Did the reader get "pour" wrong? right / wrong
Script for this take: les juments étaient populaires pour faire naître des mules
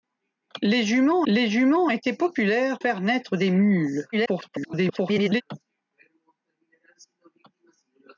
wrong